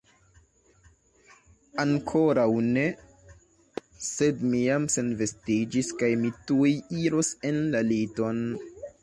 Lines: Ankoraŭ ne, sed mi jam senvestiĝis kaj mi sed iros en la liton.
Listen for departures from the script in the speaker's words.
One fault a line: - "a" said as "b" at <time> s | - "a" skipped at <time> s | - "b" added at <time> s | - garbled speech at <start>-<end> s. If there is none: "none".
- "sed" said as "tuj" at 6.5 s